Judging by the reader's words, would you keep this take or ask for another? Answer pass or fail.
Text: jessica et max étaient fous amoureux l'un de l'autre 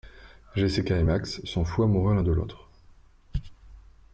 fail